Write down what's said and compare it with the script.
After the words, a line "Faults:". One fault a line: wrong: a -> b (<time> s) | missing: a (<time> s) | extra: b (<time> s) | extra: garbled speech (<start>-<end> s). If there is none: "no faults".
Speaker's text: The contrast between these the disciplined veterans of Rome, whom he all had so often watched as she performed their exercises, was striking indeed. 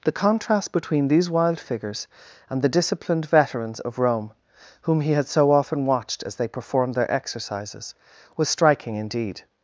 The contrast between these wild figures and the disciplined veterans of Rome, whom he had so often watched as they performed their exercises, was striking indeed.
Faults:
extra: wild figures and (1.3 s)
missing: all (5.1 s)
wrong: she -> they (6.3 s)